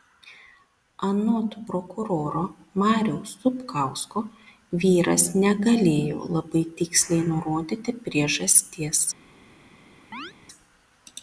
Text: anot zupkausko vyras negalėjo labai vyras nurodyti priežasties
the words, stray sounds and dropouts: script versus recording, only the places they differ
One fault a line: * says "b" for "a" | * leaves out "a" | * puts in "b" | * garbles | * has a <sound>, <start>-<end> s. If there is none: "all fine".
* puts in "prokuroro mariaus"
* says "tiksliai" for "vyras"
* has a chirp, 10.1-10.3 s